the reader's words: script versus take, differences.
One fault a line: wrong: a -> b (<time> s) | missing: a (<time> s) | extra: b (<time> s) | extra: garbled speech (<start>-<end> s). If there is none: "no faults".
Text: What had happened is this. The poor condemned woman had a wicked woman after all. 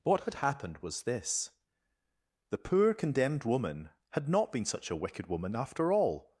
wrong: is -> was (0.8 s)
extra: not been such (4.3 s)